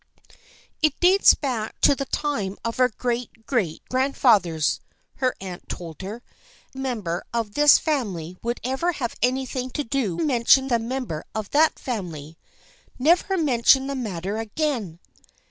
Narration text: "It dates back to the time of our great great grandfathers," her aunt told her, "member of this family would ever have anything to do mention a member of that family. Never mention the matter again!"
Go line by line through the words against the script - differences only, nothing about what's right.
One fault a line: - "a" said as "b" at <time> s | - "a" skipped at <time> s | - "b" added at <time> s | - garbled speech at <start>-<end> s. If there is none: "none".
none